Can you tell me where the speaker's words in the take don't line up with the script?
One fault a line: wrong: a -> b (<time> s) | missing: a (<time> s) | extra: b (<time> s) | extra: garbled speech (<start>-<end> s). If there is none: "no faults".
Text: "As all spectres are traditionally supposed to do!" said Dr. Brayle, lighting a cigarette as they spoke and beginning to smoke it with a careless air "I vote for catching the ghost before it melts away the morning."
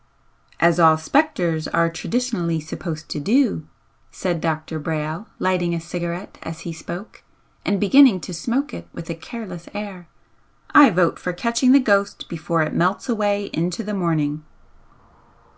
wrong: they -> he (6.6 s)
extra: into (13.5 s)